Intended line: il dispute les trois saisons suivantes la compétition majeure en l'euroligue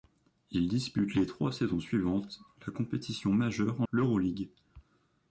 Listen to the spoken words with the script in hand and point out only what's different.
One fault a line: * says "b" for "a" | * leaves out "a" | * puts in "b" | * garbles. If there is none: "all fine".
all fine